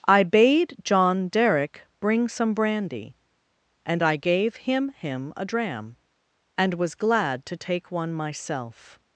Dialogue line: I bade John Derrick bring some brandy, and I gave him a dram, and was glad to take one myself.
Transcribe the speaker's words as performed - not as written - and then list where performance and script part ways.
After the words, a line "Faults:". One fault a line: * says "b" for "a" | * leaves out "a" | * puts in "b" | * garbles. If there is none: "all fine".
I bade John Derrick bring some brandy, and I gave him him a dram, and was glad to take one myself.
Faults:
* puts in "him"